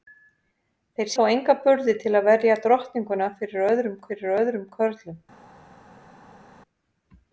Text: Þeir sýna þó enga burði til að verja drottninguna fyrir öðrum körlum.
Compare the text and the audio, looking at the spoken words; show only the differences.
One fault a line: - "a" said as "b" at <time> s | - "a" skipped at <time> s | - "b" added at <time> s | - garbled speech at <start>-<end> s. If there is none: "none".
- "sýna" skipped at 1.1 s
- "fyrir öðrum" added at 4.1 s